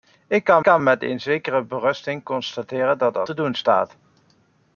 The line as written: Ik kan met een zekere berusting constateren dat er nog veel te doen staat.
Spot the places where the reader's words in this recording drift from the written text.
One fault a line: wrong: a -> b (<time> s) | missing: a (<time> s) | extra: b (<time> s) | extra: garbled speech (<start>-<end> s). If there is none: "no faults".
extra: kan (0.6 s)
missing: nog veel (3.3 s)